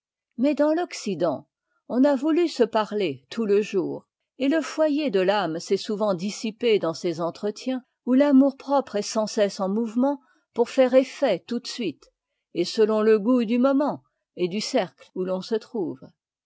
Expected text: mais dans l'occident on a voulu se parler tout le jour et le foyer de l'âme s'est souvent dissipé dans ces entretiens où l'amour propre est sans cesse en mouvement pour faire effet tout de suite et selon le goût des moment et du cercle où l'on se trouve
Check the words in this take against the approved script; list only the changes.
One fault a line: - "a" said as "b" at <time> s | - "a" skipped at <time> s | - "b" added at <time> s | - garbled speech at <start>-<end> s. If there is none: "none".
- "des" said as "du" at 13.4 s